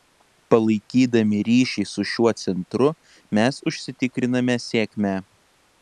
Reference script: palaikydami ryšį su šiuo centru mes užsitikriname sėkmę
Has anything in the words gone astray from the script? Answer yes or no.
no